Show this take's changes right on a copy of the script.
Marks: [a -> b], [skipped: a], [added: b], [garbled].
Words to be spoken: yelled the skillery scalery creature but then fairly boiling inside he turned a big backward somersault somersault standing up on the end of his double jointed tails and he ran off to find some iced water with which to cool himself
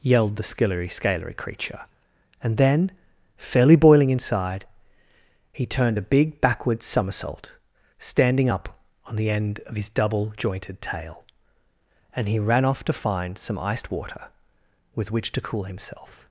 yelled the skillery scalery creature [but -> and] then fairly boiling inside he turned a big backward somersault [skipped: somersault] standing up on the end of his double jointed [tails -> tail] and he ran off to find some iced water with which to cool himself